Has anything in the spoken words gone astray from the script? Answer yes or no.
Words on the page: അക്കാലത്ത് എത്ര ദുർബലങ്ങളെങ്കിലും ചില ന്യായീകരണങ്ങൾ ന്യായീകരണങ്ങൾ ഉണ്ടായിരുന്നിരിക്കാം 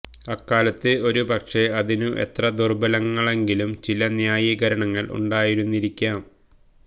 yes